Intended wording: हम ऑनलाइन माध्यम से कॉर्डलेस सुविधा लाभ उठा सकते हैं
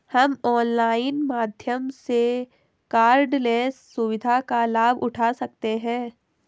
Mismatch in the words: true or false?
true